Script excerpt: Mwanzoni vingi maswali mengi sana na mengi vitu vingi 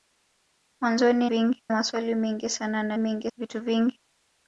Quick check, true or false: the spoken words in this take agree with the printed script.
true